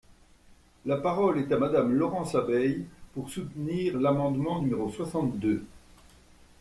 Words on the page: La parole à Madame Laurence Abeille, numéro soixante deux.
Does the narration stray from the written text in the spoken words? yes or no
yes